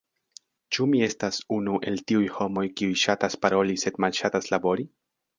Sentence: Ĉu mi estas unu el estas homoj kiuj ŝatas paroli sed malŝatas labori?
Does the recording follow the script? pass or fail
fail